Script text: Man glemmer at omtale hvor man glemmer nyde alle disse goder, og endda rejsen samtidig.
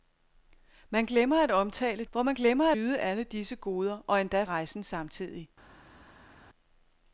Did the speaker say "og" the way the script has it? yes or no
yes